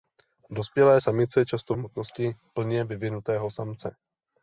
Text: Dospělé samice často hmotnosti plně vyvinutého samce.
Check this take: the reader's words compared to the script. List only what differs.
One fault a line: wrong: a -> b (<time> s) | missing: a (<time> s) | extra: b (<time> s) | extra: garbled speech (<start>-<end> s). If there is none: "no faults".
no faults